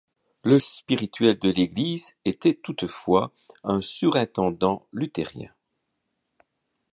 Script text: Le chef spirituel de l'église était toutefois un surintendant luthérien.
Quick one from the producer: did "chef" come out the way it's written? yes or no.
no